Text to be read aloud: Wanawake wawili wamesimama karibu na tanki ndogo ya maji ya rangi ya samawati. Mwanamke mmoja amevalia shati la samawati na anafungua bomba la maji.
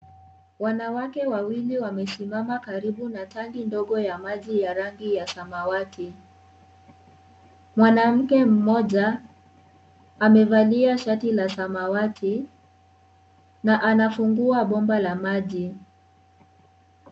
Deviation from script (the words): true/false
false